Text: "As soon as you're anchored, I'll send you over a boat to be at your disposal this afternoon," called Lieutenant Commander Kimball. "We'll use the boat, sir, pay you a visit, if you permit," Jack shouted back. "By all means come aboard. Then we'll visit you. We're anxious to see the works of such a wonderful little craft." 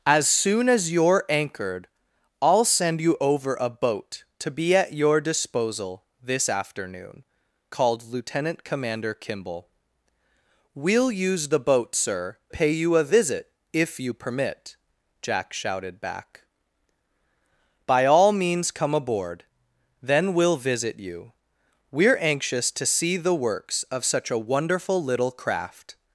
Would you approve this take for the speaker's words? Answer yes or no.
yes